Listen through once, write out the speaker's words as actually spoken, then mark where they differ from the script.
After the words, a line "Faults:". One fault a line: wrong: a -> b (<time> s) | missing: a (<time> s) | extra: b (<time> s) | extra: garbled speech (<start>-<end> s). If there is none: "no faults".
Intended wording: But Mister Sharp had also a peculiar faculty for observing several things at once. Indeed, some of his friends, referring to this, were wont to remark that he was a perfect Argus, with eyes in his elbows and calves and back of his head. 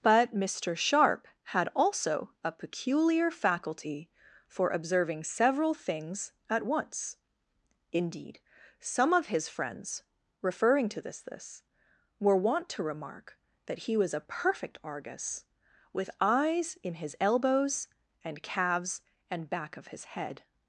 But Mister Sharp had also a peculiar faculty for observing several things at once. Indeed, some of his friends, referring to this this, were wont to remark that he was a perfect Argus, with eyes in his elbows and calves and back of his head.
Faults:
extra: this (11.2 s)